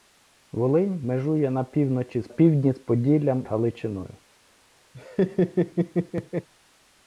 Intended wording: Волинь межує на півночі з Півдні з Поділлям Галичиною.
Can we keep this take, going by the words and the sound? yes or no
no